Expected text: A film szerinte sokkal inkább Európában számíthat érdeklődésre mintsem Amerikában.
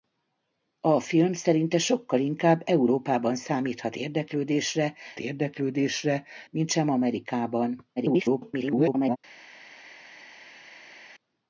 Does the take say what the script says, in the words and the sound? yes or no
no